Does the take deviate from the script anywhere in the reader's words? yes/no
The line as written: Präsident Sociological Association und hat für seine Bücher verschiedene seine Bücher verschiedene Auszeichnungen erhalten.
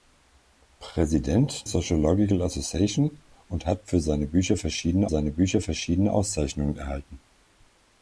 no